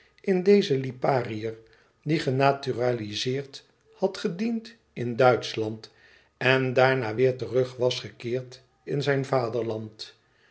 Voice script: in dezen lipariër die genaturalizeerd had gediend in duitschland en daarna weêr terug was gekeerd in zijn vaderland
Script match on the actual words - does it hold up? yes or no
yes